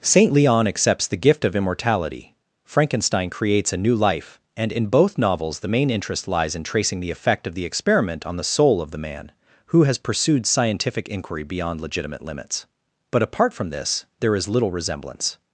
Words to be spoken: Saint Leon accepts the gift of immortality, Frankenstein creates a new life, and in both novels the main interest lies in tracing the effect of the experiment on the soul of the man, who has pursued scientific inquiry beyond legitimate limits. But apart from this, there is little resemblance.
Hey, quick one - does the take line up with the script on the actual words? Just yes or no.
yes